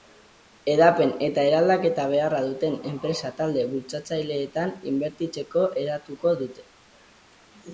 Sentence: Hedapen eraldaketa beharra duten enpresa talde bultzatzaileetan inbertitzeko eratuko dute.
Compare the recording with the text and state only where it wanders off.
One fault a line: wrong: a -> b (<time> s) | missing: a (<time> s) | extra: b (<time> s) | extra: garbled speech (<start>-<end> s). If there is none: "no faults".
extra: eta (1.2 s)